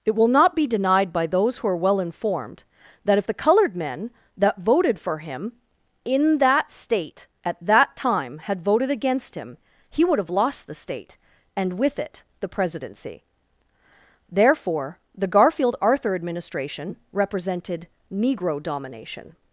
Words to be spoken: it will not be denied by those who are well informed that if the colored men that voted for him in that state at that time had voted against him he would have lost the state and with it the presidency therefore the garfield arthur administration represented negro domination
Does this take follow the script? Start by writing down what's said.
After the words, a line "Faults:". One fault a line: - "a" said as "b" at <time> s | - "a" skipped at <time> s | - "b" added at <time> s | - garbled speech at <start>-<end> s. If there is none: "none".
it will not be denied by those who are well informed that if the colored men that voted for him in that state at that time had voted against him he would have lost the state and with it the presidency therefore the garfield arthur administration represented negro domination
Faults:
none